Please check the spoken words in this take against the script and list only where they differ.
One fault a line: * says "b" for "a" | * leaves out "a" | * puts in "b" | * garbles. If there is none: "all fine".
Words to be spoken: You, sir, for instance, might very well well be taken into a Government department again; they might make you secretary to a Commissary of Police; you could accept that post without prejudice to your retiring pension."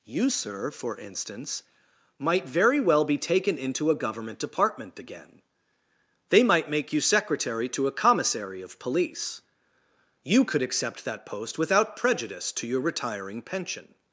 * leaves out "well"